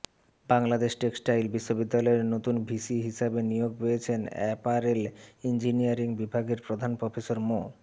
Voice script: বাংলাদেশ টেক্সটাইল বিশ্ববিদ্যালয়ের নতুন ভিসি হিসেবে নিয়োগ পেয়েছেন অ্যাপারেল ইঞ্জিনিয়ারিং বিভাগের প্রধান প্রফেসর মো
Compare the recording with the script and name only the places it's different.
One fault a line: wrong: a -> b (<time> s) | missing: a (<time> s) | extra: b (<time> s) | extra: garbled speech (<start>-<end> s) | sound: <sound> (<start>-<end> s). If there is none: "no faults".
no faults